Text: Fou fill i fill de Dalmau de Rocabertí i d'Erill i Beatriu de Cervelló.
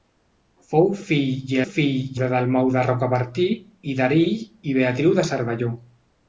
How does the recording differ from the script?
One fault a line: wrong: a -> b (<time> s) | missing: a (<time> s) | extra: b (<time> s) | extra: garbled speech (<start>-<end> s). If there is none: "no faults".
no faults